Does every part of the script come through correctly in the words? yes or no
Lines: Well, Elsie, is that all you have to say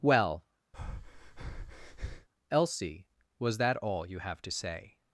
no